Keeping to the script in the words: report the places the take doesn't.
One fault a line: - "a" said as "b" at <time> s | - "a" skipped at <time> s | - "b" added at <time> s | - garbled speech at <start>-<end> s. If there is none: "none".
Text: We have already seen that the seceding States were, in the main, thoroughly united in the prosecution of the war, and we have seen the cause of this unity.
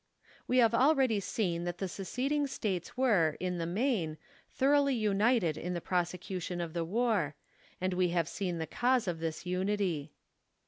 none